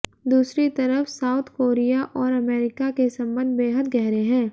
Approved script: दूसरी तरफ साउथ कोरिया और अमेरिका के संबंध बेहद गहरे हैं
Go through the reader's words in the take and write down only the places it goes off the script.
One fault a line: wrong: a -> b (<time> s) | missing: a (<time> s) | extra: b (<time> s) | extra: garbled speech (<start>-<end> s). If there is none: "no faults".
no faults